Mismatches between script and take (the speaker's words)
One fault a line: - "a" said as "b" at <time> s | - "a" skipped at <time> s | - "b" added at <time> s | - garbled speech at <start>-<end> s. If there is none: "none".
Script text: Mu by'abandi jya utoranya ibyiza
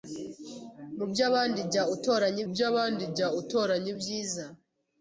- "by'abandi jya utoranya" added at 2.5 s